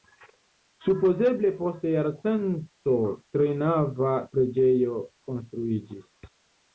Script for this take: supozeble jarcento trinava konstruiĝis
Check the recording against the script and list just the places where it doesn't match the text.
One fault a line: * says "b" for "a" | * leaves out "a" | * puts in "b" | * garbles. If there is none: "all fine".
* puts in "post"
* puts in "preĝejo"